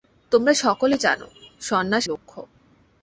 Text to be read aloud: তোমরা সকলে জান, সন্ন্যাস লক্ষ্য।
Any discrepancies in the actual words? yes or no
no